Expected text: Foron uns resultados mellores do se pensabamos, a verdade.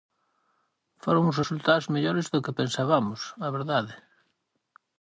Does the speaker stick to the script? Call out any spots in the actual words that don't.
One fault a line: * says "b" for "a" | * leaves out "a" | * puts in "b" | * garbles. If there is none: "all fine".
* says "que" for "se"